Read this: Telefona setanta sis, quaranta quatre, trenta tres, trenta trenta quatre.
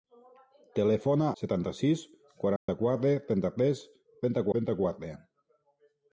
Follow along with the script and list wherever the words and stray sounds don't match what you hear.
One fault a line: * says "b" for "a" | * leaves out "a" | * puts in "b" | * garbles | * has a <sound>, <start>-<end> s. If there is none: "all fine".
* has a dropout, 2.6-2.7 s